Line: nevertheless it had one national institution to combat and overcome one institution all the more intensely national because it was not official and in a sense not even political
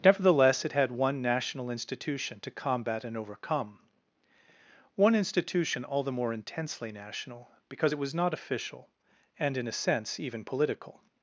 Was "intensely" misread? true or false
false